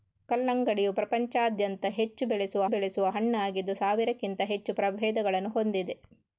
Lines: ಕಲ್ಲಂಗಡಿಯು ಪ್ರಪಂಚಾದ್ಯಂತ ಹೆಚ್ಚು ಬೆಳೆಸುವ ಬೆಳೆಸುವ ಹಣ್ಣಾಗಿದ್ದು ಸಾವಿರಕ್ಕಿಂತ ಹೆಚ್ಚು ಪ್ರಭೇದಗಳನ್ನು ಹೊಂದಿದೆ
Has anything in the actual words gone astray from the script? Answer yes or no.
no